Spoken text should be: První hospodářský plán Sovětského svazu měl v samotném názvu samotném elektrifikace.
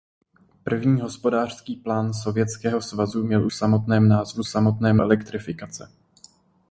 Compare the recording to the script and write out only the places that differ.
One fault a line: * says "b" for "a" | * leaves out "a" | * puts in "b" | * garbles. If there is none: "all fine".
all fine